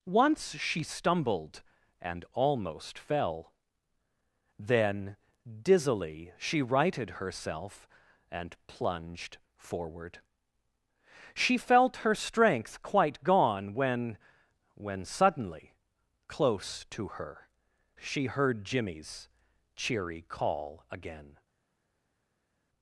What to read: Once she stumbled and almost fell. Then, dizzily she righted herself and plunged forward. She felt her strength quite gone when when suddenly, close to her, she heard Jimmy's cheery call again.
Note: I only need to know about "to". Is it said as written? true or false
true